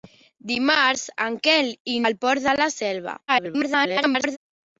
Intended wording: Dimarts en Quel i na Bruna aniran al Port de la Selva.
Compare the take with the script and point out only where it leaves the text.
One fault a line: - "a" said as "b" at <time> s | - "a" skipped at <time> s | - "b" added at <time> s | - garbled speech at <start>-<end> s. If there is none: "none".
- "na Bruna aniran" skipped at 2.0 s
- garbled speech at 3.3-4.4 s